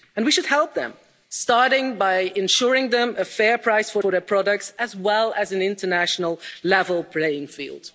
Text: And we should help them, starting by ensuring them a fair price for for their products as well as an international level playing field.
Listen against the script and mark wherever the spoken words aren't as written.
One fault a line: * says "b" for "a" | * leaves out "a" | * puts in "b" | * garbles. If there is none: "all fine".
all fine